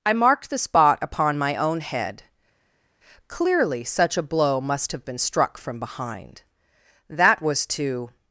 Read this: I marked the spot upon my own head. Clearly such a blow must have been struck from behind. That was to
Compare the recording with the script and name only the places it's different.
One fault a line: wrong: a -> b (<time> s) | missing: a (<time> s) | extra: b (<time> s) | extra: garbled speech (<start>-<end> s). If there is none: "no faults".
no faults